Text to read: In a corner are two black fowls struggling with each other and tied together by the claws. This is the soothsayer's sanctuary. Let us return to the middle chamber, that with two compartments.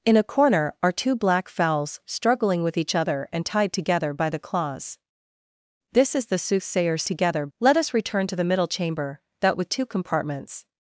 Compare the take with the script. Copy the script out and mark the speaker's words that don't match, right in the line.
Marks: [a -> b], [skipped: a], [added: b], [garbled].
In a corner are two black fowls struggling with each other and tied together by the claws. This is the soothsayer's [sanctuary. -> together] Let us return to the middle chamber, that with two compartments.